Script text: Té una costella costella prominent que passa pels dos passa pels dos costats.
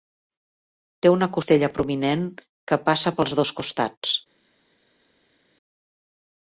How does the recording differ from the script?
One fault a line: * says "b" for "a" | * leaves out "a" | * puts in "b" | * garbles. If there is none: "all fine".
* leaves out "costella"
* leaves out "passa pels dos"